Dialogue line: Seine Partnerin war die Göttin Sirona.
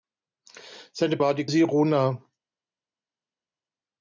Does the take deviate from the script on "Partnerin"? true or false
true